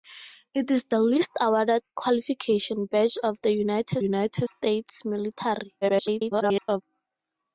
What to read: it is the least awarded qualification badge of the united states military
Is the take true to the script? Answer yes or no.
no